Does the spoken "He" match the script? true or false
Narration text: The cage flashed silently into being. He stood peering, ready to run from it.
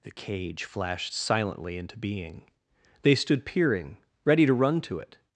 false